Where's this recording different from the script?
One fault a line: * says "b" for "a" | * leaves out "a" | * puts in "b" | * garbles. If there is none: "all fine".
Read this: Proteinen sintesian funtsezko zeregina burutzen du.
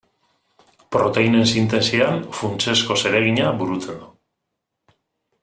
all fine